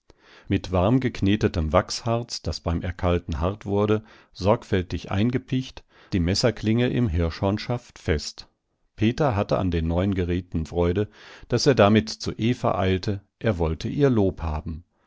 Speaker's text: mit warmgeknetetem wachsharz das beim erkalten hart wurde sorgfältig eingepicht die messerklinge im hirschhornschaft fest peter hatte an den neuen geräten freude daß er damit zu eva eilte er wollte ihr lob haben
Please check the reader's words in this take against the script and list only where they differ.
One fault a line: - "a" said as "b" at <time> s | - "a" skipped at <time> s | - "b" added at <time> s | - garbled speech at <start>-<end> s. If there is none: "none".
none